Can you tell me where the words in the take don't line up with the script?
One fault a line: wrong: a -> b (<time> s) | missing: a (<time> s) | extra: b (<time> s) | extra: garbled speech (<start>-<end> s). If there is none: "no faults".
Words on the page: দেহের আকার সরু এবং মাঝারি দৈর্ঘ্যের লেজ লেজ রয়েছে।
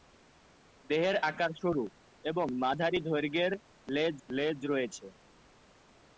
no faults